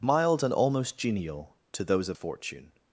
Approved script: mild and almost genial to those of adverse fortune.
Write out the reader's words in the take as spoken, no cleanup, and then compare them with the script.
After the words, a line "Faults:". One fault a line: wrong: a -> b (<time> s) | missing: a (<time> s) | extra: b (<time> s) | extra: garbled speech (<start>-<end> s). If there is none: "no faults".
mild and almost genial to those of fortune.
Faults:
missing: adverse (2.2 s)